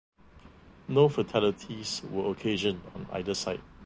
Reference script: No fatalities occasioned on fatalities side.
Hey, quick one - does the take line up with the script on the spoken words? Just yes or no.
no